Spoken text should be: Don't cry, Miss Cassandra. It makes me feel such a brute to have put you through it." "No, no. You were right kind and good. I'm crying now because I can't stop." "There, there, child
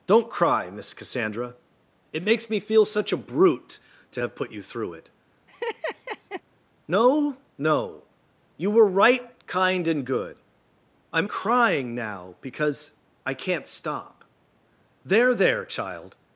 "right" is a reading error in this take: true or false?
false